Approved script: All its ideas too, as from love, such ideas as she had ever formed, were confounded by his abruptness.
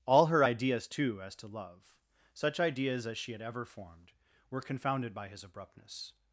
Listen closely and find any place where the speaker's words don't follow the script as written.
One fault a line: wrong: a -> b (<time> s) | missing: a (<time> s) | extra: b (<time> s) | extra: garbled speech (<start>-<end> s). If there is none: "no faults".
wrong: its -> her (0.3 s)
wrong: from -> to (1.4 s)